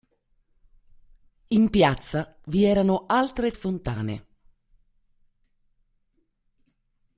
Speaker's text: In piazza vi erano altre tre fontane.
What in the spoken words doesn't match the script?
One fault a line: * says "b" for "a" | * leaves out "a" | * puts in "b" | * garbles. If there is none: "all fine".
* leaves out "tre"